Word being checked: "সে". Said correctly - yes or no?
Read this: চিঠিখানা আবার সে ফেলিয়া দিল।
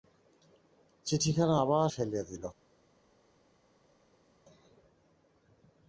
no